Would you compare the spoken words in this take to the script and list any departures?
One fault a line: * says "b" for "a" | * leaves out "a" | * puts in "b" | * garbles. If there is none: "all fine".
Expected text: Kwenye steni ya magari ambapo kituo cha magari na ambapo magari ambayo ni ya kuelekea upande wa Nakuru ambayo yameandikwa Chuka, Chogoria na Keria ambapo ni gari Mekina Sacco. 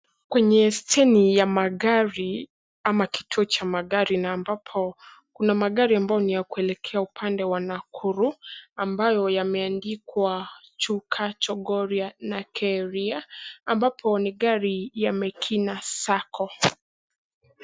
* says "ama" for "ambapo"
* puts in "kuna"
* puts in "ya"